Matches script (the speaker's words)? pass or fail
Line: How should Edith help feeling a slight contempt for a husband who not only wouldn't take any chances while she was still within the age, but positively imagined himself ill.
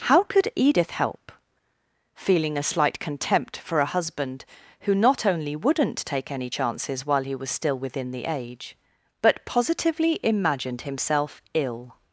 fail